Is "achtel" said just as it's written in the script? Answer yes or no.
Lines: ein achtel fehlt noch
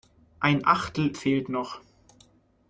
yes